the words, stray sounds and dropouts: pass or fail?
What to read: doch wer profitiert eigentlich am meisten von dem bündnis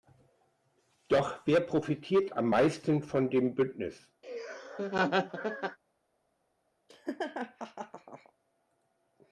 fail